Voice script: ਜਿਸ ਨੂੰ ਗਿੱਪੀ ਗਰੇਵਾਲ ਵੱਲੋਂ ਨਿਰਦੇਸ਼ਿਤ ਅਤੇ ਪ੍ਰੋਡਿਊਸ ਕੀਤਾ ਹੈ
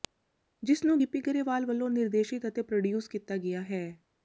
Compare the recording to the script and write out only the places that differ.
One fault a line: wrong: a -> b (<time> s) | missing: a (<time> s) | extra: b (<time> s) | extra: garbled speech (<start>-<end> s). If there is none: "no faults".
extra: ਗਿਆ (3.4 s)